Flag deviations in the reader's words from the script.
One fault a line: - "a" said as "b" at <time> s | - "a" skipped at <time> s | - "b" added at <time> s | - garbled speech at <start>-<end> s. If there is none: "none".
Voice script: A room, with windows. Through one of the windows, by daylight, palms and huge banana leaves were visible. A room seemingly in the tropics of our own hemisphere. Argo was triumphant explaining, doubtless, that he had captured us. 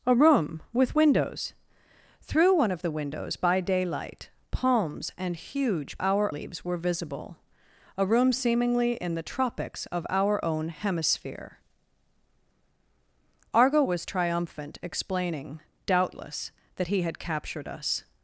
- "banana" said as "our" at 6.0 s